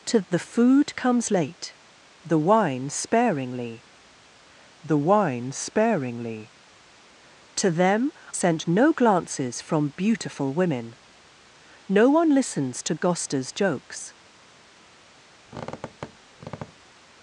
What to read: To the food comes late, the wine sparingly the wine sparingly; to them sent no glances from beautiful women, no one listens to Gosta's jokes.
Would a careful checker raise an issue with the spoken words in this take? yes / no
no